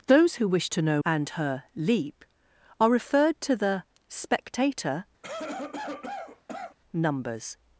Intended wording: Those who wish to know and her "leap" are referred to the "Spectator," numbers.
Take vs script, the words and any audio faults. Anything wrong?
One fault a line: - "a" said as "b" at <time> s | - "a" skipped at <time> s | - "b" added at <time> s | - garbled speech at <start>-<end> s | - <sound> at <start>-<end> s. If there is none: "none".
- cough at 5.2-6.8 s